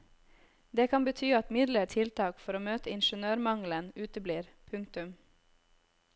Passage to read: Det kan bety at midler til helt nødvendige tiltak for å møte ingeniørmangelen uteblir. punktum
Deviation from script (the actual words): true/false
true